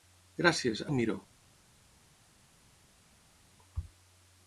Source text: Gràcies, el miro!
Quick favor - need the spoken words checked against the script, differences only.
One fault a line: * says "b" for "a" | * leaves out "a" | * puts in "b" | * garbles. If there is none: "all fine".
all fine